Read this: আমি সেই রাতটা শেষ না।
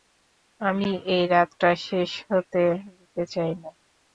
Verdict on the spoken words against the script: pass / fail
fail